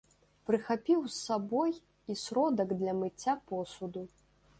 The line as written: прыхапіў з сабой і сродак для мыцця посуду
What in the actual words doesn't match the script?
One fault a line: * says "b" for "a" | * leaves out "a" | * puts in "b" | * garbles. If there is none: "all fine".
all fine